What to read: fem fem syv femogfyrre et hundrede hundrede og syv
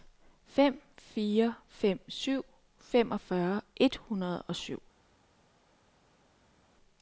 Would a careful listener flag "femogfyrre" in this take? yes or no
no